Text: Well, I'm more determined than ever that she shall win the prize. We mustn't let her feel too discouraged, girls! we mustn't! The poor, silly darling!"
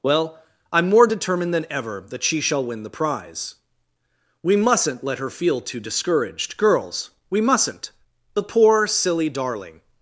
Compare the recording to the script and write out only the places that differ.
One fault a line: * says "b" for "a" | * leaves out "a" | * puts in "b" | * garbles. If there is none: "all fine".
all fine